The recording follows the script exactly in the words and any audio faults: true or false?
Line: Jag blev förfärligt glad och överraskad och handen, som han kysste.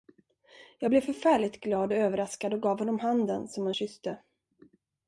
false